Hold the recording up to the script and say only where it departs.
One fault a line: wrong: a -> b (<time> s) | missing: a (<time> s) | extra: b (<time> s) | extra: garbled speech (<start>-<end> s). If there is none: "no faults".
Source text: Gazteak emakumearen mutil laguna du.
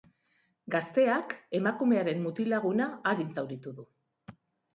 extra: arin zauritu (3.1 s)